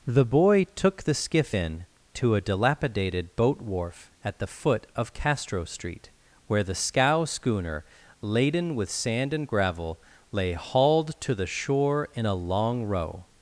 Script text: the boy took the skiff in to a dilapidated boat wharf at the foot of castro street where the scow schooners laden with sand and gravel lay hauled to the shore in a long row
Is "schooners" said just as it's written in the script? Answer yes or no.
no